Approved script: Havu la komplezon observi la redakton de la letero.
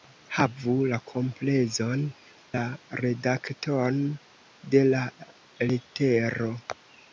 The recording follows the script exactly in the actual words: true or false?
false